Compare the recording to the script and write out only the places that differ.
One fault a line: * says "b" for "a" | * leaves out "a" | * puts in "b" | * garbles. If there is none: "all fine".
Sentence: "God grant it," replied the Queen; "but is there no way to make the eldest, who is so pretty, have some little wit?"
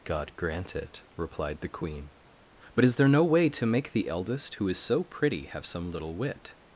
all fine